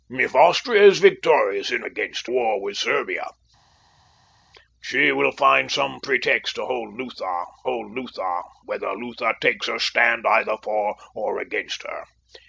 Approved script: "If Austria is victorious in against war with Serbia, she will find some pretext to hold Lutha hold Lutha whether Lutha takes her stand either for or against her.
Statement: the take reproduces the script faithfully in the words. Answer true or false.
true